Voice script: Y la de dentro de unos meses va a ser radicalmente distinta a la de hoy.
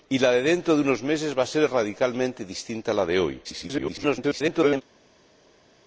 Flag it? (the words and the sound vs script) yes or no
yes